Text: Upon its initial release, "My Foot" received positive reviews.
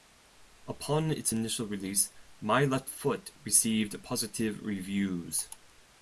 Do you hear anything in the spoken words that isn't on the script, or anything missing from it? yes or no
yes